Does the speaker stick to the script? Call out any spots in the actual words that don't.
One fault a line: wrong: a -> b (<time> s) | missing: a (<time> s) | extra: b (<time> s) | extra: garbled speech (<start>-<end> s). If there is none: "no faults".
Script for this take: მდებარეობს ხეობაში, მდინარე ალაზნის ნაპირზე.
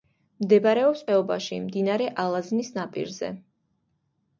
no faults